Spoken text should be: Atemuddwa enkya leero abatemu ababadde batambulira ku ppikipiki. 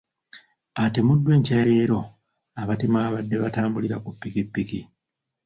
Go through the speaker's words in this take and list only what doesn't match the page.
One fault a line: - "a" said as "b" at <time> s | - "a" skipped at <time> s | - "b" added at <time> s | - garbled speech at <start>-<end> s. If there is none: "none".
none